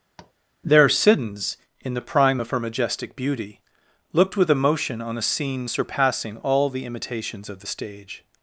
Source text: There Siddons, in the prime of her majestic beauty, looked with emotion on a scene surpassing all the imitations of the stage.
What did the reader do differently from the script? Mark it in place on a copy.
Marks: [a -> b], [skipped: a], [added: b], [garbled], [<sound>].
[tap] There Siddons, in the prime of her majestic beauty, looked with emotion on a scene surpassing all the imitations of the stage.